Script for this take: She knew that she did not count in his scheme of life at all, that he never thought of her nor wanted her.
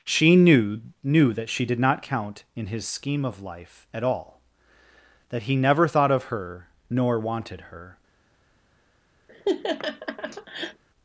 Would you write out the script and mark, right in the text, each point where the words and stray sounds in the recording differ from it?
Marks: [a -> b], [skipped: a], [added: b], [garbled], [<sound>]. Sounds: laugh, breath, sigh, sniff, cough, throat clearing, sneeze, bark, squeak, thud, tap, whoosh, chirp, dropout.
She knew [added: knew] that she did not count in his scheme of life at all, that he never thought of her nor wanted her. [laugh]